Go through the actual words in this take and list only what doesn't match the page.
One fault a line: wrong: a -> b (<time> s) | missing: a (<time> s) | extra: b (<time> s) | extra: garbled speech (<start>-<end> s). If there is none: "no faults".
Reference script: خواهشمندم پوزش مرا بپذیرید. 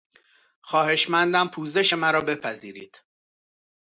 no faults